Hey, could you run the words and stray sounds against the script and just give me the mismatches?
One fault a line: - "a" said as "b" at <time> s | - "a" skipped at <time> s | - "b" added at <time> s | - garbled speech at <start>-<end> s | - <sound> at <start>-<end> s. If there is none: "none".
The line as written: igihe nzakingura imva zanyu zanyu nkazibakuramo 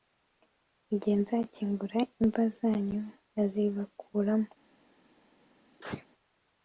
- "zanyu" skipped at 3.0 s
- sneeze at 5.8-6.1 s